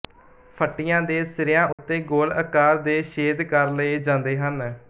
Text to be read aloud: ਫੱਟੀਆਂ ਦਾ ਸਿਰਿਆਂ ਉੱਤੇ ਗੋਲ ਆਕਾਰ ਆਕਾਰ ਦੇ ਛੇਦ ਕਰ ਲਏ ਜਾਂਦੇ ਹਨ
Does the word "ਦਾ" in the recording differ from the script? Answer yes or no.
yes